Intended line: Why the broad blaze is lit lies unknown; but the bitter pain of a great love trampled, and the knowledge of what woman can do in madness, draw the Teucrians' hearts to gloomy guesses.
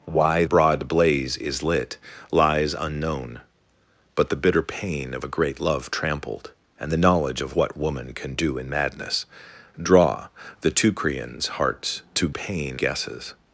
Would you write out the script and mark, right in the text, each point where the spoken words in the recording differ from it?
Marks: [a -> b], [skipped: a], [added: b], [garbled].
Why [skipped: the] broad blaze is lit lies unknown; but the bitter pain of a great love trampled, and the knowledge of what woman can do in madness, draw the Teucrians' hearts to [gloomy -> pain] guesses.